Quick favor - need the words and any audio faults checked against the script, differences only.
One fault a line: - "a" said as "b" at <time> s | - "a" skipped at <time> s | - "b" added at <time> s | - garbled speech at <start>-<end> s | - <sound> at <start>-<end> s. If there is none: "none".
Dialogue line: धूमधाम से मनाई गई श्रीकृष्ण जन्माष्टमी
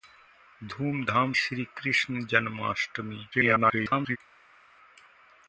- "से मनाई गई" skipped at 1.3 s
- garbled speech at 3.3-4.2 s